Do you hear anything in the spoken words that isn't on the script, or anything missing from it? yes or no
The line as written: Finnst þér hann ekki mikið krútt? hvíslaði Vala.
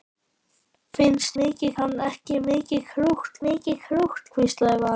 yes